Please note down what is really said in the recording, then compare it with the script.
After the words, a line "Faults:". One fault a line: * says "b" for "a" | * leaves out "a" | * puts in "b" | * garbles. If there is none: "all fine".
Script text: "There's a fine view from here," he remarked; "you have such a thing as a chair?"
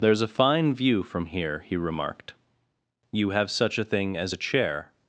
"There's a fine view from here," he remarked; "you have such a thing as a chair?"
Faults:
all fine